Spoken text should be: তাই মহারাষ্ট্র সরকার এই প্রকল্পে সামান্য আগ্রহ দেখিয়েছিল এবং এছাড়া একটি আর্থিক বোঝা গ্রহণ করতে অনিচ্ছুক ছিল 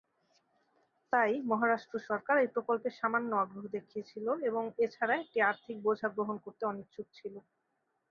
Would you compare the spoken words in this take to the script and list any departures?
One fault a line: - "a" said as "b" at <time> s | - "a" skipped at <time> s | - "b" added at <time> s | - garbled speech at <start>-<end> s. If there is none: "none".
none